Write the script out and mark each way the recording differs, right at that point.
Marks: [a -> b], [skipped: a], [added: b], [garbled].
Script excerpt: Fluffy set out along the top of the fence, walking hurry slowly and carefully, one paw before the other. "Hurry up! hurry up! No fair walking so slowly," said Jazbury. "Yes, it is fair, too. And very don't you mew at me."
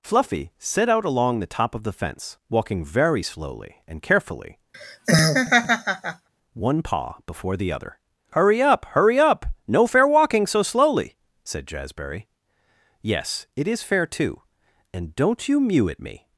Fluffy set out along the top of the fence, walking [hurry -> very] slowly and carefully, one paw before the other. "Hurry up! hurry up! No fair walking so slowly," said Jazbury. "Yes, it is fair, too. And [skipped: very] don't you mew at me."